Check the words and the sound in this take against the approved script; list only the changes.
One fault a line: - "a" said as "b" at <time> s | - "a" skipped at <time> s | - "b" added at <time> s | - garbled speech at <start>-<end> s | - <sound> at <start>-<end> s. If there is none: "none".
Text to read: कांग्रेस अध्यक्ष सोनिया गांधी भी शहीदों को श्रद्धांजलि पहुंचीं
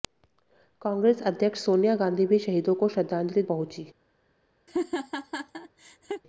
- laugh at 4.7-6.2 s